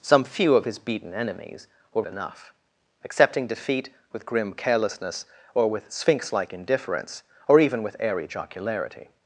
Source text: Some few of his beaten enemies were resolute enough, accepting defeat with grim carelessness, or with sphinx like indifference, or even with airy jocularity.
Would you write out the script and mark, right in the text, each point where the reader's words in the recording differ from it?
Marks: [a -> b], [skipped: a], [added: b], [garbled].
Some few of his beaten enemies were [skipped: resolute] enough, accepting defeat with grim carelessness, or with sphinx like indifference, or even with airy jocularity.